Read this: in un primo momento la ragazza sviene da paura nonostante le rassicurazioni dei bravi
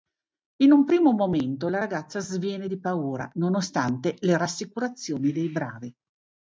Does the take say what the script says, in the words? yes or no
no